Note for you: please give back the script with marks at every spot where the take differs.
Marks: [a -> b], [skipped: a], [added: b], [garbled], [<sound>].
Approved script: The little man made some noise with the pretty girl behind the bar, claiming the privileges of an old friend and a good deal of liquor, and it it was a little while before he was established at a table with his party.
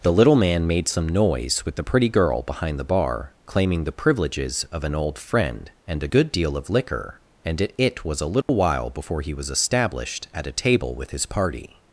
The little man made some noise with the pretty girl behind the bar, claiming the privileges of an old friend and a good deal of liquor, and it it was a little [dropout] while before he was established at a table with his party.